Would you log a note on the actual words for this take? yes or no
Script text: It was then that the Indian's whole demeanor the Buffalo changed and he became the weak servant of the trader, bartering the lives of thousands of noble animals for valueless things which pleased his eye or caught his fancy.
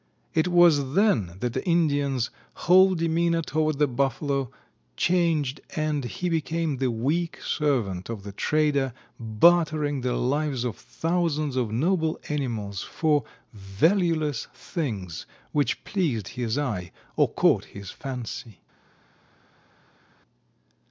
yes